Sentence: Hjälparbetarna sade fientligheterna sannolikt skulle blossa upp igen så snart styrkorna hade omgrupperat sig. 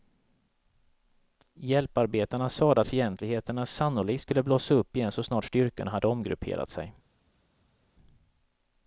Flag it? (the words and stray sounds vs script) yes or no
no